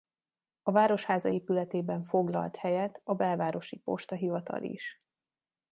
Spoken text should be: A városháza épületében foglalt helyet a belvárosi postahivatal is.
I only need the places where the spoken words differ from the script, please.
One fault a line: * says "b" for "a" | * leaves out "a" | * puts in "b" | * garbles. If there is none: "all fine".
all fine